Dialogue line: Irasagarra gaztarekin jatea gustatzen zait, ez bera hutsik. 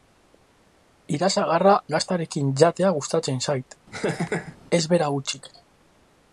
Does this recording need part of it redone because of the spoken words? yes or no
no